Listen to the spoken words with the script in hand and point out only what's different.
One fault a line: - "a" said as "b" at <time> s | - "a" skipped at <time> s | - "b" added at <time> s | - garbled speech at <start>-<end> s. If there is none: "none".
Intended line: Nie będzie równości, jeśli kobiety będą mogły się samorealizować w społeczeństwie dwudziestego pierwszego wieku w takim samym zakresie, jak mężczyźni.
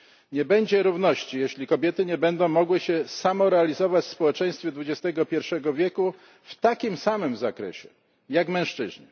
- "nie" added at 2.1 s